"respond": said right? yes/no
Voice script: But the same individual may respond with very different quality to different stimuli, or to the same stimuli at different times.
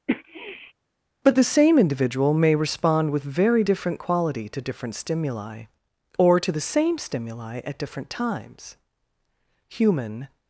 yes